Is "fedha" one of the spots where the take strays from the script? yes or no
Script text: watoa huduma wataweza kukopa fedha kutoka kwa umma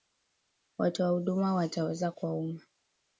yes